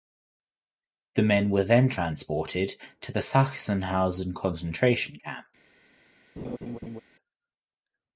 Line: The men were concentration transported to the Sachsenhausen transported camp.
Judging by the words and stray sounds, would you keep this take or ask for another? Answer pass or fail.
fail